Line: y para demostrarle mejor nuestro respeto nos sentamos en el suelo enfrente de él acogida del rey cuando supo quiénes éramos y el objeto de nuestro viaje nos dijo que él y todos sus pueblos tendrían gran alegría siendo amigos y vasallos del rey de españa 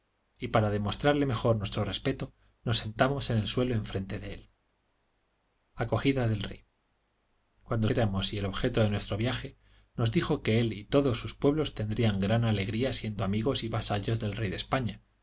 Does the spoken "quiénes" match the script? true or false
false